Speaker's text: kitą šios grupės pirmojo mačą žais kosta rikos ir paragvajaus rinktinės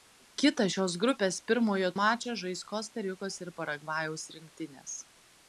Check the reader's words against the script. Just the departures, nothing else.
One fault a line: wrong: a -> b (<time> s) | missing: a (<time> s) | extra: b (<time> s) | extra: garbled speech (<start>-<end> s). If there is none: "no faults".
no faults